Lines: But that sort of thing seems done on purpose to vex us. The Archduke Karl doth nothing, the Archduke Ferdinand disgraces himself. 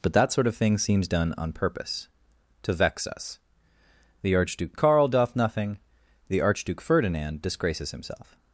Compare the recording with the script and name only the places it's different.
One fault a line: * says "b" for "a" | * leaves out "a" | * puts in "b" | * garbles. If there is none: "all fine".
all fine